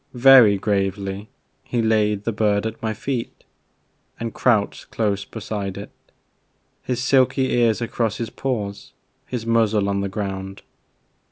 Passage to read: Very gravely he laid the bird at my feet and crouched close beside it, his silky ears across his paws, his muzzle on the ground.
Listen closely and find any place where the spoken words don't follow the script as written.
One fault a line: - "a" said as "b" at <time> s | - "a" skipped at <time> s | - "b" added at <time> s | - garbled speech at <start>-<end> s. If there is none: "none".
none